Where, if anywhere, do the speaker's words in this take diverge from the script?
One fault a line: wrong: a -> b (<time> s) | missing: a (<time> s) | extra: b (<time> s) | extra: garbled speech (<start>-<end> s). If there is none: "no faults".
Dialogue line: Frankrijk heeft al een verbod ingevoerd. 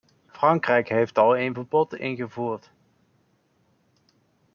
no faults